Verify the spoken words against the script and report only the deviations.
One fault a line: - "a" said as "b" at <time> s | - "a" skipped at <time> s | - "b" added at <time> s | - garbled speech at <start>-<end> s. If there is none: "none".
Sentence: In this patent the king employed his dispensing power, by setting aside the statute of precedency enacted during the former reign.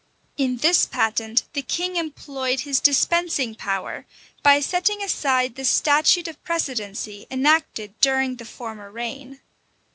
none